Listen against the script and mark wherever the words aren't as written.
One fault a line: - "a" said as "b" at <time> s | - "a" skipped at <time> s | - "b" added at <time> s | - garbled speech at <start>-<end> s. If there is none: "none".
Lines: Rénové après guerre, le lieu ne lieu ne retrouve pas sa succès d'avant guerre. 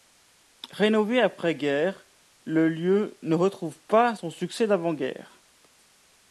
- "lieu ne" skipped at 3.4 s
- "sa" said as "son" at 4.1 s